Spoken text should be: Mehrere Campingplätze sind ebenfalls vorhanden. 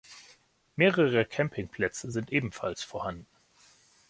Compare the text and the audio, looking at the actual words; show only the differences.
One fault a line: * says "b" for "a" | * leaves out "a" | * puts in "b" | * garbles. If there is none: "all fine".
all fine